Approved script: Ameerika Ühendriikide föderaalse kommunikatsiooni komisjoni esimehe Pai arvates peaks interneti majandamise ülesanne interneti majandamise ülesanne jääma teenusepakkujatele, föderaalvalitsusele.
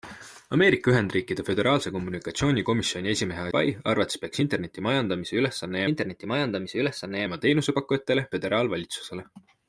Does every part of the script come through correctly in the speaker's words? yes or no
yes